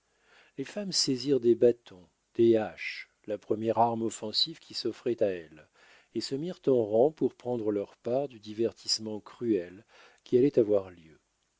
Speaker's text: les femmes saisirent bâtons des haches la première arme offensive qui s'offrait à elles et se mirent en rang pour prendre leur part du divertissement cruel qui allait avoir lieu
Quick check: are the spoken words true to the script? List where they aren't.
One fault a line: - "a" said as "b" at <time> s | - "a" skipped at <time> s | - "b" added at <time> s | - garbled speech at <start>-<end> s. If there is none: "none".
- "des" added at 1.4 s